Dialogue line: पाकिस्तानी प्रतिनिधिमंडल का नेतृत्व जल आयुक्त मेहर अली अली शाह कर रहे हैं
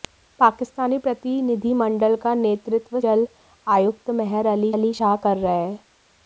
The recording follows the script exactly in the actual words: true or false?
true